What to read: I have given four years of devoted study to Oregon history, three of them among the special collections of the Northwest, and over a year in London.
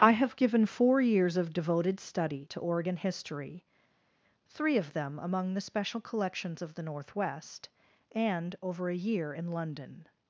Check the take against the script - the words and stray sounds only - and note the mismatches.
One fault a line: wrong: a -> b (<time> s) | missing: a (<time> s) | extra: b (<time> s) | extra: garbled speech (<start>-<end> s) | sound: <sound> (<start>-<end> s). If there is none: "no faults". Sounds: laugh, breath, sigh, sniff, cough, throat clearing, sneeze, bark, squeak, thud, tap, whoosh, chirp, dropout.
no faults